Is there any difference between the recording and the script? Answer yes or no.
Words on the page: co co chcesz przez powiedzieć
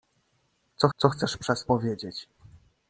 no